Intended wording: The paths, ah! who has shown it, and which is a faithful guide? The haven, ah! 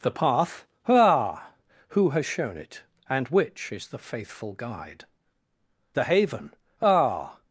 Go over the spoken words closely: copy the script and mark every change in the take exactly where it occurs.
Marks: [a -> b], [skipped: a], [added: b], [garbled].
The [paths, -> path] ah! who has shown it, and which is [a -> the] faithful guide? The haven, ah!